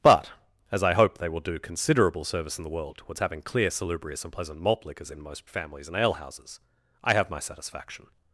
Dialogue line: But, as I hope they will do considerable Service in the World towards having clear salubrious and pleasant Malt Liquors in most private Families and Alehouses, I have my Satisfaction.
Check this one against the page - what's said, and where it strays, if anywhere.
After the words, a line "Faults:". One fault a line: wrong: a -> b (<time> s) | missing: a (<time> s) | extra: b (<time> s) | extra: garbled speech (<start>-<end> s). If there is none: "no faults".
But, as I hope they will do considerable Service in the World towards having clear salubrious and pleasant Malt Liquors in most Families and Alehouses, I have my Satisfaction.
Faults:
missing: private (5.5 s)